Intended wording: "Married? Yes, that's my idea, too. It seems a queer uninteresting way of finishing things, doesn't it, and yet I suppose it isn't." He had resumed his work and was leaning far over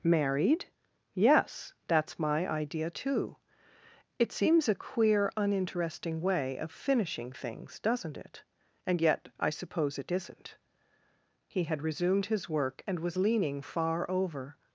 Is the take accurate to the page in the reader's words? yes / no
yes